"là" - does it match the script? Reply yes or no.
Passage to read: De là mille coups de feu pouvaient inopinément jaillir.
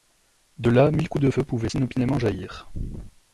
yes